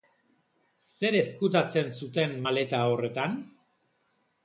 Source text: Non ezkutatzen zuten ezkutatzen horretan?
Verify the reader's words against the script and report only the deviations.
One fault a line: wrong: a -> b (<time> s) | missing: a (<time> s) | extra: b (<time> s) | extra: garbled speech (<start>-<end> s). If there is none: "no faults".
wrong: Non -> Zer (0.9 s)
wrong: ezkutatzen -> maleta (2.5 s)